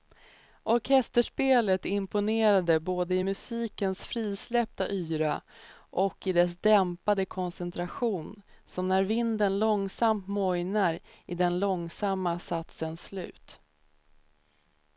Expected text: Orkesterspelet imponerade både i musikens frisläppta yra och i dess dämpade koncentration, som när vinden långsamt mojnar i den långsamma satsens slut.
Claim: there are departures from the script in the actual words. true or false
false